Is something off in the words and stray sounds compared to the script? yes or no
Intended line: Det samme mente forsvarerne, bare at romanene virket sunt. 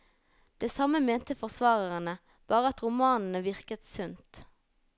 no